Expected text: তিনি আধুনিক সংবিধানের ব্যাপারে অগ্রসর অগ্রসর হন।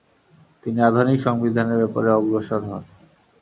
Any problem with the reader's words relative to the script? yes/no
yes